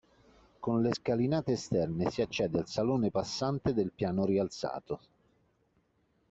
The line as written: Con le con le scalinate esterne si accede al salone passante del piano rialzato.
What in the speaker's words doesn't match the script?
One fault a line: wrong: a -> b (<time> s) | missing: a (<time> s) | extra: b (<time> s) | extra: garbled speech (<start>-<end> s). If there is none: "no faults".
missing: con le (0.9 s)